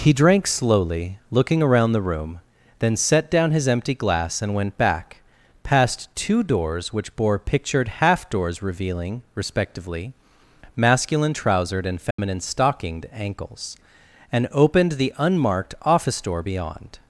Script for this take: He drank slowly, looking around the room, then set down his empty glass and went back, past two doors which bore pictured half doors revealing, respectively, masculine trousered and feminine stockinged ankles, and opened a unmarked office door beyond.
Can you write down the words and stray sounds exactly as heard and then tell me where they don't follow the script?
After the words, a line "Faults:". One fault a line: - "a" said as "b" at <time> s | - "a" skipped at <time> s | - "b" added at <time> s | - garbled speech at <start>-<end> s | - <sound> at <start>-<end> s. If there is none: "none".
He drank slowly, looking around the room, then set down his empty glass and went back, past two doors which bore pictured half doors revealing, respectively, masculine trousered and feminine stockinged ankles, and opened the unmarked office door beyond.
Faults:
- dropout at 12.1-12.2 s
- "a" said as "the" at 14.9 s